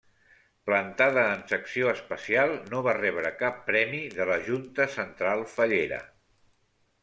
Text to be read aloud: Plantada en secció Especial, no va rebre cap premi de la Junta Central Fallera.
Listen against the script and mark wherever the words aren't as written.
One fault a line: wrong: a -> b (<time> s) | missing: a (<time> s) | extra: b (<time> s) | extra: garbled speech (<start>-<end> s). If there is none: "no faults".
no faults